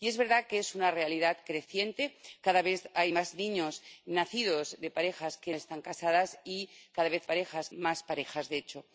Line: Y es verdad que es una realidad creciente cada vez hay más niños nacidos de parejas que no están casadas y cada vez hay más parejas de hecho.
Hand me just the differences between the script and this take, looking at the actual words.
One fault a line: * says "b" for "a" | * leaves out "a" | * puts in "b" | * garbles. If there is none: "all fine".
* leaves out "no"
* says "parejas" for "hay"